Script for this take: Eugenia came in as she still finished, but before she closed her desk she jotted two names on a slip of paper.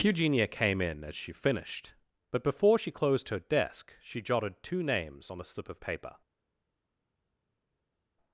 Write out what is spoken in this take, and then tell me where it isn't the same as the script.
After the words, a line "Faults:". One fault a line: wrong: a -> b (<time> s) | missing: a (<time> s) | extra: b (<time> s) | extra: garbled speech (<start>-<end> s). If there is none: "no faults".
Eugenia came in as she finished, but before she closed her desk she jotted two names on a slip of paper.
Faults:
missing: still (1.3 s)